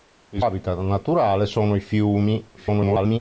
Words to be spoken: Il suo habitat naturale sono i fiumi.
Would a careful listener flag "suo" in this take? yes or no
yes